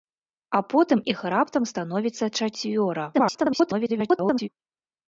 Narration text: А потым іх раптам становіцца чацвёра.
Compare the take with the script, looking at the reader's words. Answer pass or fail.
fail